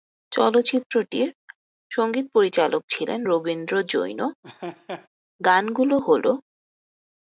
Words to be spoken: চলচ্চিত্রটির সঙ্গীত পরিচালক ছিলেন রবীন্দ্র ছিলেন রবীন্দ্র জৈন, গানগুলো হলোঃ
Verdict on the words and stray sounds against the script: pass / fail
fail